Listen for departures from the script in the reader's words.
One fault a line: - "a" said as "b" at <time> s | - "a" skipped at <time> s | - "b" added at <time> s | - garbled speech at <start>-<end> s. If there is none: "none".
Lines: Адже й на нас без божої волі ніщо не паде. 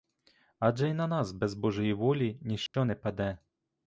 none